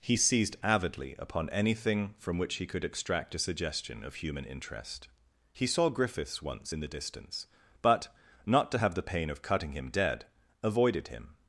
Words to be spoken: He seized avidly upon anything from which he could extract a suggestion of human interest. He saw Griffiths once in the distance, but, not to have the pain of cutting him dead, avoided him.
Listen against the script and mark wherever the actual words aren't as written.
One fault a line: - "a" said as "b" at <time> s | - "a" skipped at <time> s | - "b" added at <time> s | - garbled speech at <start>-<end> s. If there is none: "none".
none